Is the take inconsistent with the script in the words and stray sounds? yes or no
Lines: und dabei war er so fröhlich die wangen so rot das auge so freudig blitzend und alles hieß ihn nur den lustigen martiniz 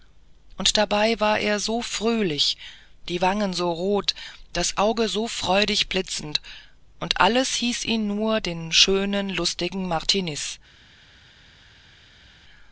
yes